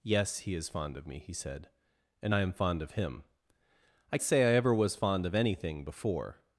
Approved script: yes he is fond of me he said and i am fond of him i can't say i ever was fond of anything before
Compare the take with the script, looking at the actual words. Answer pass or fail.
fail